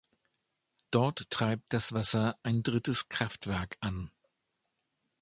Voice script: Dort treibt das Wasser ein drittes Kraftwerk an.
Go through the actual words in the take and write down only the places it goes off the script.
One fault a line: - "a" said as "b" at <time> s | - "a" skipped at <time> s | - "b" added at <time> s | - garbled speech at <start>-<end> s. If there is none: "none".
none